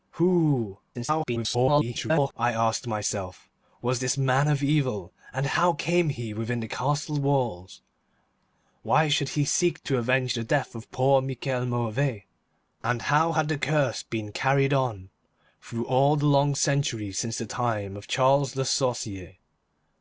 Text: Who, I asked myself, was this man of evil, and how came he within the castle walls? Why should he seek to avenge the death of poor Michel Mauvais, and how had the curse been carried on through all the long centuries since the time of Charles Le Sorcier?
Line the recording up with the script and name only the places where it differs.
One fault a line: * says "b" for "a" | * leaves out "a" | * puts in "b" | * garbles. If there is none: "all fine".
* garbles